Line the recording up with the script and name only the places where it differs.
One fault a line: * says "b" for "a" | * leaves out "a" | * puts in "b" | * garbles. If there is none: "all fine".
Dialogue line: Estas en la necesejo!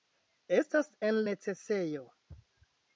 * leaves out "la"